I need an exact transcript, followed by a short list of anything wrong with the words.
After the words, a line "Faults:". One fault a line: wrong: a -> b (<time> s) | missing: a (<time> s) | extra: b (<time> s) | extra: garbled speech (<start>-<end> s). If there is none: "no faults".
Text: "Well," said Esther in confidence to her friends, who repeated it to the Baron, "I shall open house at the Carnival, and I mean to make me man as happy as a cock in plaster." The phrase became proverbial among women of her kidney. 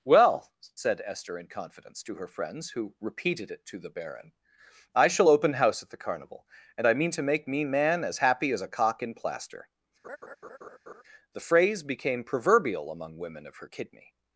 "Well," said Esther in confidence to her friends, who repeated it to the Baron, "I shall open house at the Carnival, and I mean to make me man as happy as a cock in plaster." The phrase became proverbial among women of her kidney.
Faults:
no faults